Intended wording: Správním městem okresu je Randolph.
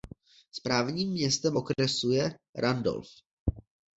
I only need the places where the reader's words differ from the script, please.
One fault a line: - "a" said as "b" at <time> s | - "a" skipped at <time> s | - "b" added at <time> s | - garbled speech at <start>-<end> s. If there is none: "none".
none